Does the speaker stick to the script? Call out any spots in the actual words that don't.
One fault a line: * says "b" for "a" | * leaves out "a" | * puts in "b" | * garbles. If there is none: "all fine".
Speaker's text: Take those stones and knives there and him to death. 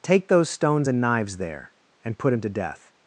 * puts in "put"